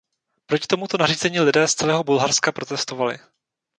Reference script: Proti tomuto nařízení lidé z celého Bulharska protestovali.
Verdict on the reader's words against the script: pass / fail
pass